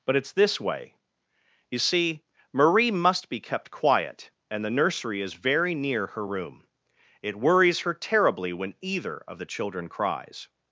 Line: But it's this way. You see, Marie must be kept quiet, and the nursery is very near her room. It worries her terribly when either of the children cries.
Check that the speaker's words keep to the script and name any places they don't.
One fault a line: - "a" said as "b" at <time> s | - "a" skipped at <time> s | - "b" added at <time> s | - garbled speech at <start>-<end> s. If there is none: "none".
none